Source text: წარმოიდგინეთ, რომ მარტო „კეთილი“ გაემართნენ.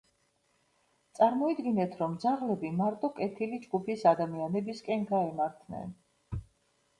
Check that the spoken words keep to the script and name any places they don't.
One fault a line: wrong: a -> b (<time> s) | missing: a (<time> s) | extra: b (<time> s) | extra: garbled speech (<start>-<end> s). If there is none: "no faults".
extra: ძაღლები (2.2 s)
extra: ჯგუფის ადამიანებისკენ (3.7 s)